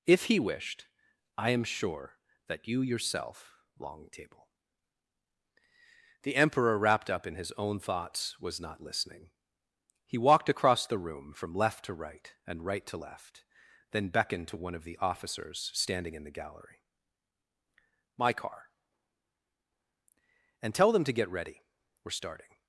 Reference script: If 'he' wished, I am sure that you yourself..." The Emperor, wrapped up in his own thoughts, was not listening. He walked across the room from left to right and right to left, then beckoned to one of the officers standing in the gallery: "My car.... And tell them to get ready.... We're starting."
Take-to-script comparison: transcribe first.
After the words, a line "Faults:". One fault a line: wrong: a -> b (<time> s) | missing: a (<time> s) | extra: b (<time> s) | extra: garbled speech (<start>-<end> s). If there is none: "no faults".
If 'he' wished, I am sure that you yourself..." long table The Emperor, wrapped up in his own thoughts, was not listening. He walked across the room from left to right and right to left, then beckoned to one of the officers standing in the gallery: "My car.... And tell them to get ready.... We're starting."
Faults:
extra: long table (3.8 s)